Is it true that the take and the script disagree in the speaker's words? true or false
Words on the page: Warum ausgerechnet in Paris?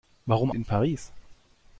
true